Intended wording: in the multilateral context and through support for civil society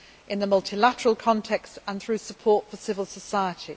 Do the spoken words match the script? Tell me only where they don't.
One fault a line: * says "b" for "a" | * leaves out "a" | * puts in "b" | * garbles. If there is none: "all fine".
all fine